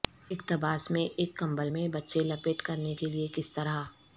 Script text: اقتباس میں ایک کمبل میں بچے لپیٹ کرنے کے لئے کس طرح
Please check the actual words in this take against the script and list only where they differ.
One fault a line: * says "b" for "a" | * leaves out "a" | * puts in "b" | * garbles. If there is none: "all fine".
all fine